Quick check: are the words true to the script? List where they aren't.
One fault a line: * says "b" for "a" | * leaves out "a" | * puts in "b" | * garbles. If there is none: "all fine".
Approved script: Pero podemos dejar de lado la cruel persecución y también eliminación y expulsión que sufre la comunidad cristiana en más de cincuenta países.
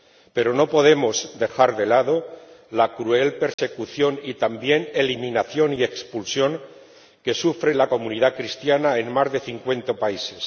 * puts in "no"